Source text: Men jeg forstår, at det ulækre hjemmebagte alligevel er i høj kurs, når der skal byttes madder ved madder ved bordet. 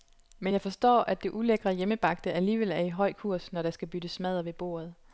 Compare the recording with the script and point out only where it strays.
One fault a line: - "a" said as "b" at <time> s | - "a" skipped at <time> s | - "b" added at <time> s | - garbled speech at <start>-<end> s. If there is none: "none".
- "madder ved" skipped at 4.5 s